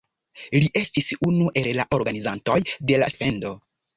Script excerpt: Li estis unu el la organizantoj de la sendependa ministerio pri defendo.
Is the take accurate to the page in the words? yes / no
no